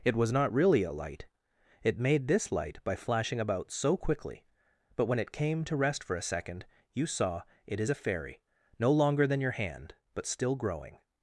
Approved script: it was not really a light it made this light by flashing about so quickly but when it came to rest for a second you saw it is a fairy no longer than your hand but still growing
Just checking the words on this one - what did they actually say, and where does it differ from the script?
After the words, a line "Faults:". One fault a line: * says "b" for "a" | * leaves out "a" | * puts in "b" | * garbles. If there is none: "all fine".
it was not really a light it made this light by flashing about so quickly but when it came to rest for a second you saw it is a fairy no longer than your hand but still growing
Faults:
all fine